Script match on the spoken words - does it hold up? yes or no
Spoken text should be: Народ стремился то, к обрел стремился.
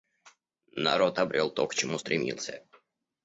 no